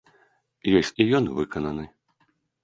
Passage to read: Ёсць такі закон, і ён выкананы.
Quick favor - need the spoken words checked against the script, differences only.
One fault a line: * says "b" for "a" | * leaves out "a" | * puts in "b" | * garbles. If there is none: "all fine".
* leaves out "такі закон"